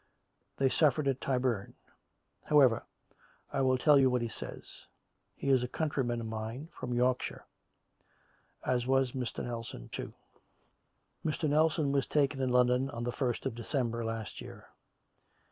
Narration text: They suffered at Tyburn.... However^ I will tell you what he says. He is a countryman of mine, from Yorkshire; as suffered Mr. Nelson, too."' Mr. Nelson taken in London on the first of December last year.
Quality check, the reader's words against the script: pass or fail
fail